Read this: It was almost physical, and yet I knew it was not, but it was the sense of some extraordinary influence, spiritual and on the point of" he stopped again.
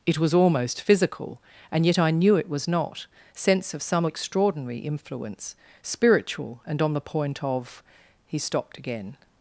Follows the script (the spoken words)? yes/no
no